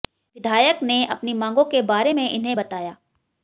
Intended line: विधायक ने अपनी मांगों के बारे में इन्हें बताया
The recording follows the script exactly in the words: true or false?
true